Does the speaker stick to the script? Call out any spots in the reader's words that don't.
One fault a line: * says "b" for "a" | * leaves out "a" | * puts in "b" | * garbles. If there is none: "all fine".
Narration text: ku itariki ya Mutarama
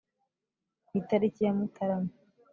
all fine